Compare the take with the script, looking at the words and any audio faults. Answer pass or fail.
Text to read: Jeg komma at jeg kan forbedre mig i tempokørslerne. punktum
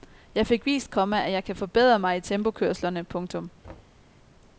fail